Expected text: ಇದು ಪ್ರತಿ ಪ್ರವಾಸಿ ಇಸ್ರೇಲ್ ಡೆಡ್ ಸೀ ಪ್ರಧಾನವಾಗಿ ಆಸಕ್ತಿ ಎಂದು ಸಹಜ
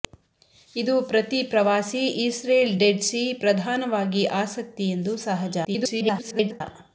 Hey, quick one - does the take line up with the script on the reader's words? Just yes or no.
no